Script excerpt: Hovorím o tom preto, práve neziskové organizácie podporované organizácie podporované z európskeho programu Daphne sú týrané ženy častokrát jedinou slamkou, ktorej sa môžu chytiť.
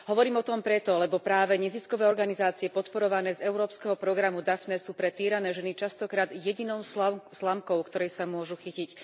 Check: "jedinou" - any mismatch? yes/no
no